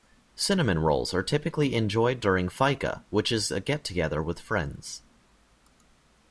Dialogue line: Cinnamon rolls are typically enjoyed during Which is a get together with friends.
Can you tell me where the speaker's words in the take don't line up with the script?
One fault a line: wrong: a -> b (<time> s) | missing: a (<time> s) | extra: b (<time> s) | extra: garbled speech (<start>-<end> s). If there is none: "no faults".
extra: Fika (2.5 s)